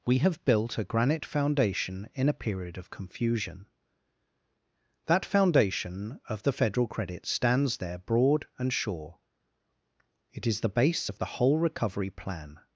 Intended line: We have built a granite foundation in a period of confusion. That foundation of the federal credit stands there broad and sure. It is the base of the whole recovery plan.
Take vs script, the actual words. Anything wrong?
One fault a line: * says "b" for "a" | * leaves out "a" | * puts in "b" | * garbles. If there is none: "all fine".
all fine